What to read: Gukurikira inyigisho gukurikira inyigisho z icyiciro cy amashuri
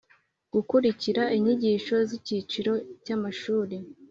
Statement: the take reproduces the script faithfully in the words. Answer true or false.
false